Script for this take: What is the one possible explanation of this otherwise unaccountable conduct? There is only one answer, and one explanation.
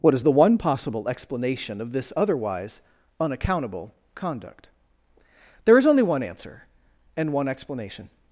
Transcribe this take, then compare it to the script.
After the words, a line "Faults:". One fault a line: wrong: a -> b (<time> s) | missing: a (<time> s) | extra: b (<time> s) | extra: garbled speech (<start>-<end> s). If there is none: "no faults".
What is the one possible explanation of this otherwise unaccountable conduct? There is only one answer, and one explanation.
Faults:
no faults